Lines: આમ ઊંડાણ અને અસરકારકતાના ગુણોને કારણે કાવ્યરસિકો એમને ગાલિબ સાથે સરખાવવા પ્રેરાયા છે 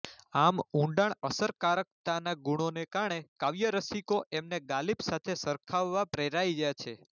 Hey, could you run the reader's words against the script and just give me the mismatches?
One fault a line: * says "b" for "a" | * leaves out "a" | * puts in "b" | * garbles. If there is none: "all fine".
* leaves out "અને"